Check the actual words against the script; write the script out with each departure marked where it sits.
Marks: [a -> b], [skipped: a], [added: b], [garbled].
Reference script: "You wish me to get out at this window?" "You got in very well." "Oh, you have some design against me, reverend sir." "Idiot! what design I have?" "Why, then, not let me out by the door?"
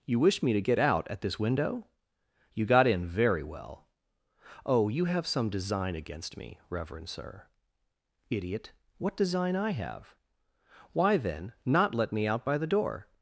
"You wish me to get out at this window?" "You got in very well." "Oh, you have some design against me, reverend sir." "Idiot! what design I have?" "Why, then, not let me out by the door?"